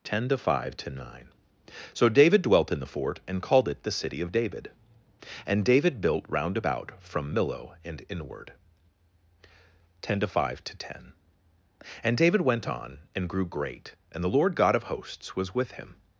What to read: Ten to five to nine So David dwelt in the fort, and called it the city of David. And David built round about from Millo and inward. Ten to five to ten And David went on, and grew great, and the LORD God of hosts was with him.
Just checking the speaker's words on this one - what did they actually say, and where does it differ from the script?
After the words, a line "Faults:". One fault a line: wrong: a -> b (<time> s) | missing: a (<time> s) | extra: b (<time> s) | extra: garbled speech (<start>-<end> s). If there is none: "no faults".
Ten to five to nine So David dwelt in the fort, and called it the city of David. And David built round about from Millo and inward. Ten to five to ten And David went on, and grew great, and the LORD God of hosts was with him.
Faults:
no faults